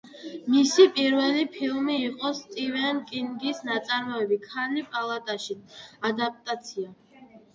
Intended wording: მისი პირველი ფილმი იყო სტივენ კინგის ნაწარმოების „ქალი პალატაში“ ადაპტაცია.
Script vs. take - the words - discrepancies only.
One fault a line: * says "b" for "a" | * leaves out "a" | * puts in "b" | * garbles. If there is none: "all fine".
all fine